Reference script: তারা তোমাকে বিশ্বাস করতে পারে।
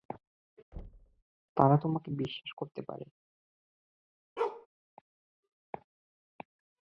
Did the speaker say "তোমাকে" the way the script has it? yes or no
yes